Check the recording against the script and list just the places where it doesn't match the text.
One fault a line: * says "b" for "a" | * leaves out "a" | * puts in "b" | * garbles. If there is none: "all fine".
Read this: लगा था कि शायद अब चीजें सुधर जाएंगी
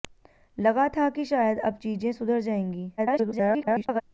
* garbles